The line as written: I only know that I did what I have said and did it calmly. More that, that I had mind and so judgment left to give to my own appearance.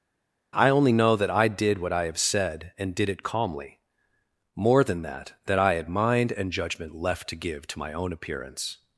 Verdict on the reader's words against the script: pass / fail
fail